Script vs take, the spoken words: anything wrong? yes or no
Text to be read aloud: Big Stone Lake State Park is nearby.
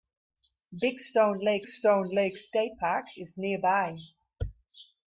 yes